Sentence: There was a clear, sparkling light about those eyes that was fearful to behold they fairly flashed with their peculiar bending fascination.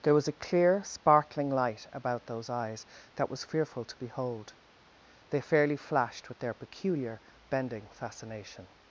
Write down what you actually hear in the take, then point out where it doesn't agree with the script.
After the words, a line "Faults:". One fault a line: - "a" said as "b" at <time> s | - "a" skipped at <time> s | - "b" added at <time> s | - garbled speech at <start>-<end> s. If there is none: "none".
There was a clear, sparkling light about those eyes that was fearful to behold they fairly flashed with their peculiar bending fascination.
Faults:
none